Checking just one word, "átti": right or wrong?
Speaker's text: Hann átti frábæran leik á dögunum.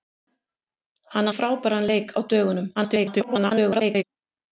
wrong